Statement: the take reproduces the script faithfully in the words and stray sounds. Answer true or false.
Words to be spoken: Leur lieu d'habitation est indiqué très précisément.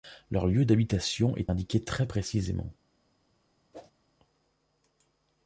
false